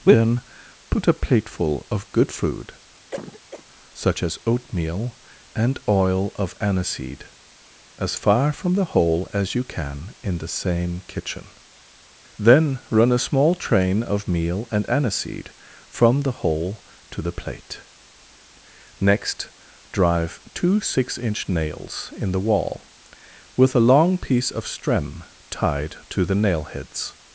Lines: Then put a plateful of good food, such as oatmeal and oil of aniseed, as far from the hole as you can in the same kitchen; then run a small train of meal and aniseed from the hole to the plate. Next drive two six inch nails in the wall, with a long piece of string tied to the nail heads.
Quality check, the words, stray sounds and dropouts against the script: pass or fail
fail